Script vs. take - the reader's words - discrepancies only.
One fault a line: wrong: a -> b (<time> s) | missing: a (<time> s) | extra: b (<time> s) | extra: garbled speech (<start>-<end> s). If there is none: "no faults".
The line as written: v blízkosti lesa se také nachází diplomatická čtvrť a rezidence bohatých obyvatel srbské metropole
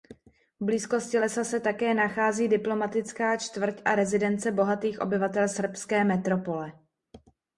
no faults